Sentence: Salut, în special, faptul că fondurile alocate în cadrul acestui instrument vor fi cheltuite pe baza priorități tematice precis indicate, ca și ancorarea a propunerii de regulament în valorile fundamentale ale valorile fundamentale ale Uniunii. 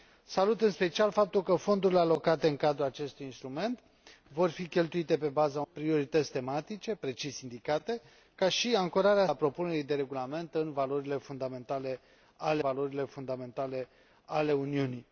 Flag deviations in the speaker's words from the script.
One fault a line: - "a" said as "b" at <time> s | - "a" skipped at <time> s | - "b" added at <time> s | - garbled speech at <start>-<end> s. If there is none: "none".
none